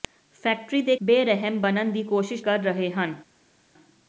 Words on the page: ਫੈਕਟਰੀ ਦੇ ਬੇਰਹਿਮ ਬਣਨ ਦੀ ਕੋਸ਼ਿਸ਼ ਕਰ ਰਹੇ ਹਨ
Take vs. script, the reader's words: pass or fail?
pass